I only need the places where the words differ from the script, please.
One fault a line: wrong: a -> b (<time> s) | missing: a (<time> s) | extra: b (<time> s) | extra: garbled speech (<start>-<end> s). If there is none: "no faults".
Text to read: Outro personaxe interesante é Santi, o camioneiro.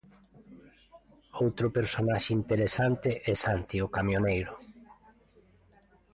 no faults